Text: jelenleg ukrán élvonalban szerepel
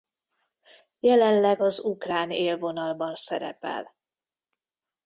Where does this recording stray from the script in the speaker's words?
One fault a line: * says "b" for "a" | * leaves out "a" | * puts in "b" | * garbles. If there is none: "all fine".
* puts in "az"